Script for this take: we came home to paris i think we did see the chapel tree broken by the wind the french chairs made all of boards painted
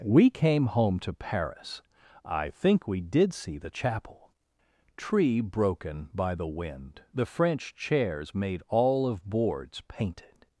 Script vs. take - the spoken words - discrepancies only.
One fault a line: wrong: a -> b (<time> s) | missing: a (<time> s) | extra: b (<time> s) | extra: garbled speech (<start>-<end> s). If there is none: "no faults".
no faults